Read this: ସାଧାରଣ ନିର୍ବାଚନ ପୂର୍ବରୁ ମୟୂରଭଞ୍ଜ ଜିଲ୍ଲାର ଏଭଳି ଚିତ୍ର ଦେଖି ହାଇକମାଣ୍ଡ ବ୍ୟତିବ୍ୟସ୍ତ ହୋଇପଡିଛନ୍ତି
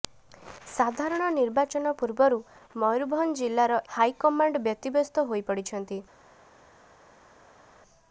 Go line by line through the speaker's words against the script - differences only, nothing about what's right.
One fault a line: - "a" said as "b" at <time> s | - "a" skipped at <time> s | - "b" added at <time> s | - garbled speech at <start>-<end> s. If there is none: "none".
- "ଏଭଳି ଚିତ୍ର ଦେଖି" skipped at 3.8 s